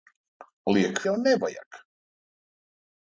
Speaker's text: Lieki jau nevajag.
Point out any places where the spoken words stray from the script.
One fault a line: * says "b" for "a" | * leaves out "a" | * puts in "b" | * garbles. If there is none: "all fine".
all fine